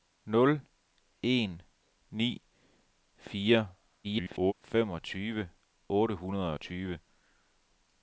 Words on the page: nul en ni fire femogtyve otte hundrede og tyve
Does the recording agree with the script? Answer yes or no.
no